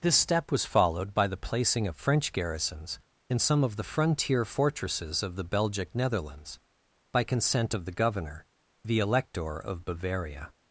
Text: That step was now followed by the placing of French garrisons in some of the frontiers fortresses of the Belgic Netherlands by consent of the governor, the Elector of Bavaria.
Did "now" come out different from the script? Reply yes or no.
yes